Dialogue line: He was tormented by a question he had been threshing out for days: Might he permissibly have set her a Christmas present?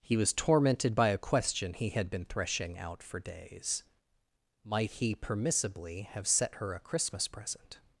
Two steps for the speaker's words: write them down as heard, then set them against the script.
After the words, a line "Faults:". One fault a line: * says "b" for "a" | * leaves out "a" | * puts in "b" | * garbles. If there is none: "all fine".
He was tormented by a question he had been threshing out for days: Might he permissibly have set her a Christmas present?
Faults:
all fine